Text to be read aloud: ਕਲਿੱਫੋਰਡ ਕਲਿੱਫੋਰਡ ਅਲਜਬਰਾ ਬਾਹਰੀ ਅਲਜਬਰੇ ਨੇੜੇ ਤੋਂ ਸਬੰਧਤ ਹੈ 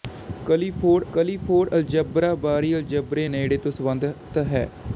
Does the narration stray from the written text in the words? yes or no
no